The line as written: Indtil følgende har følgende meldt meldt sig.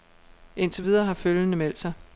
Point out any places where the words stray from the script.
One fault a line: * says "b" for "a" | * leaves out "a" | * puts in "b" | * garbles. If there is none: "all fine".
* says "videre" for "følgende"
* leaves out "meldt"